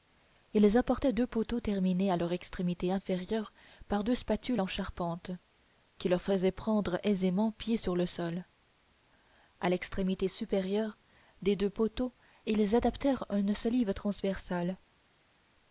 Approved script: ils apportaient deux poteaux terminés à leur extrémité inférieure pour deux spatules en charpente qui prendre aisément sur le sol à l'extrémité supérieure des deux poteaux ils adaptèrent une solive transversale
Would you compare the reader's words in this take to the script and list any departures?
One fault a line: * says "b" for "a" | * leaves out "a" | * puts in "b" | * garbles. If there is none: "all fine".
* says "par" for "pour"
* puts in "leur faisaient"
* puts in "pied"